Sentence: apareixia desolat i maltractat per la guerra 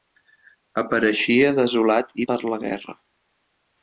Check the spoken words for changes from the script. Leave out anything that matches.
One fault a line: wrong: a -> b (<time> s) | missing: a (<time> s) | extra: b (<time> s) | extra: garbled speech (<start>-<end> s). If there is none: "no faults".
missing: maltractat (2.3 s)